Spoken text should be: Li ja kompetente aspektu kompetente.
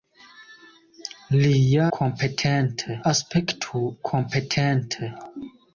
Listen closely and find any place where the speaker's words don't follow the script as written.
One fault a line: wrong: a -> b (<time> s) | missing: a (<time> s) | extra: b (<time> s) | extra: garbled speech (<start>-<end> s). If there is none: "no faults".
no faults